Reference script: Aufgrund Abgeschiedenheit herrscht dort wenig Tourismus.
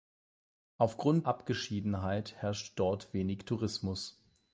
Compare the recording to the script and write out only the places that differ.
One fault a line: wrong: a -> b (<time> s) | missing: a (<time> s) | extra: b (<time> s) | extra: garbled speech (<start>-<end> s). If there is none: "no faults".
no faults